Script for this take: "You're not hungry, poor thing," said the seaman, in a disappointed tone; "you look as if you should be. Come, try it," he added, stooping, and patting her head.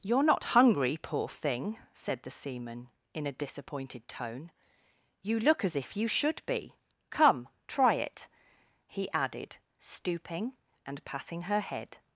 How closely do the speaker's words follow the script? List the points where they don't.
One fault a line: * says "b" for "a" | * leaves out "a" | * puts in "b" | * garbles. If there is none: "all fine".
all fine